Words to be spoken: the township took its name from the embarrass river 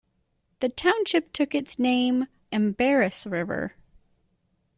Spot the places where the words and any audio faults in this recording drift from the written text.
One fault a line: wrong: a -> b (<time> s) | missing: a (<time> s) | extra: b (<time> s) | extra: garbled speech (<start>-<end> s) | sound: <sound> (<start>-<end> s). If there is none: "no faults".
missing: from the (2.2 s)